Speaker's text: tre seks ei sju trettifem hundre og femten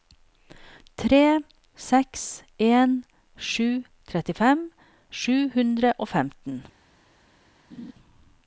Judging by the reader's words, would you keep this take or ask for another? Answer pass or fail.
fail